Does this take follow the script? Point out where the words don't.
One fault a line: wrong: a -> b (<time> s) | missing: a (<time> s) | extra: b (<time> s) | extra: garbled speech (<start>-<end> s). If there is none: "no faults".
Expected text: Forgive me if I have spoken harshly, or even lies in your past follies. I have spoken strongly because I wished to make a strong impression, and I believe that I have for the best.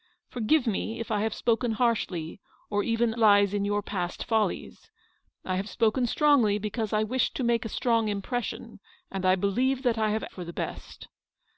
no faults